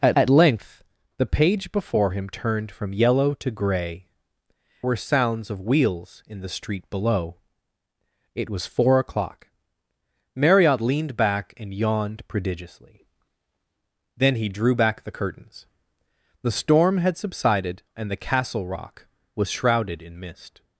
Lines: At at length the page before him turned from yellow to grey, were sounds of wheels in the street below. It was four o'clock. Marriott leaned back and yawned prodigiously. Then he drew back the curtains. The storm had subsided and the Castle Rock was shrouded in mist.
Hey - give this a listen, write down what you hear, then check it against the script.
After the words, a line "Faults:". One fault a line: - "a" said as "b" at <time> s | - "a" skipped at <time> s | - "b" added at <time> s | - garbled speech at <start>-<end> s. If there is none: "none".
At at length the page before him turned from yellow to grey, were sounds of wheels in the street below. It was four o'clock. Marriott leaned back and yawned prodigiously. Then he drew back the curtains. The storm had subsided and the Castle Rock was shrouded in mist.
Faults:
none